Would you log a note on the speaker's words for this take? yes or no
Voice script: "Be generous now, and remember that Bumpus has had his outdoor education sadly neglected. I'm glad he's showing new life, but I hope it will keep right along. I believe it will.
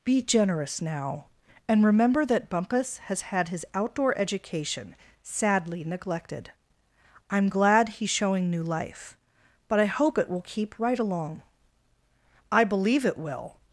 no